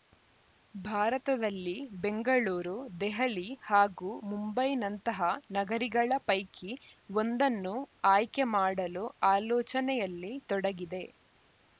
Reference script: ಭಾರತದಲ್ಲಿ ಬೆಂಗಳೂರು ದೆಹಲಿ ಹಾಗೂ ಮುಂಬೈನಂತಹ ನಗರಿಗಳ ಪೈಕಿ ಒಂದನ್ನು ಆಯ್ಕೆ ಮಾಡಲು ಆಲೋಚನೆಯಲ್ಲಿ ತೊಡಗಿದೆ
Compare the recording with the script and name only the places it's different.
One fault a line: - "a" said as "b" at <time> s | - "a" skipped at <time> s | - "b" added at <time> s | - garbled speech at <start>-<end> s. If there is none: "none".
none